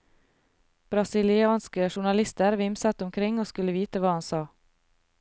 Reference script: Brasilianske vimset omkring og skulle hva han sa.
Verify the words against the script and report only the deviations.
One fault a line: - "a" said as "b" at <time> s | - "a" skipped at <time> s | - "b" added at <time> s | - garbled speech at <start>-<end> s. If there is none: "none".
- "journalister" added at 1.9 s
- "vite" added at 3.7 s